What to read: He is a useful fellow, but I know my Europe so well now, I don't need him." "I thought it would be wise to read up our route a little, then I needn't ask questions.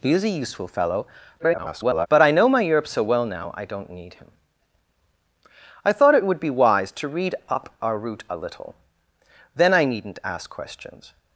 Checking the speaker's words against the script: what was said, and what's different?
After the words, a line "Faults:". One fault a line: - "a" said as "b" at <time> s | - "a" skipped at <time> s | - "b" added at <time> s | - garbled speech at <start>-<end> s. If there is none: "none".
He is a useful fellow, [garbled] but I know my Europe so well now, I don't need him." "I thought it would be wise to read up our route a little, then I needn't ask questions.
Faults:
- garbled speech at 1.4-2.1 s